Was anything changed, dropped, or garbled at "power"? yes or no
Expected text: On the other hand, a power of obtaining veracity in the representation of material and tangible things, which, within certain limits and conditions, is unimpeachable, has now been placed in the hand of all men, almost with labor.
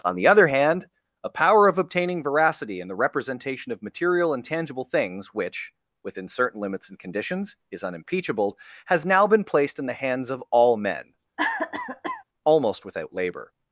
no